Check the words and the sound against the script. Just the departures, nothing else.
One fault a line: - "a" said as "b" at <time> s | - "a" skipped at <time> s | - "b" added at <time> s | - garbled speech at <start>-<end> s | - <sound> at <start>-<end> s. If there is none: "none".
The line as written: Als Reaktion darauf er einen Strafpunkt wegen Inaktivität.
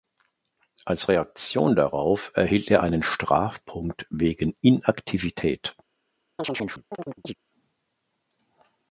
- "erhielt" added at 2.3 s
- chirp at 6.4-7.3 s